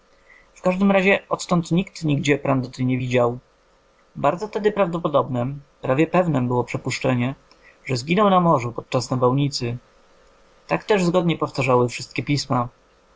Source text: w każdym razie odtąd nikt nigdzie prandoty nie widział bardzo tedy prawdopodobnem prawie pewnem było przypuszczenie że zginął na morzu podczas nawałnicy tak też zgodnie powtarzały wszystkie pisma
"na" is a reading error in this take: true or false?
false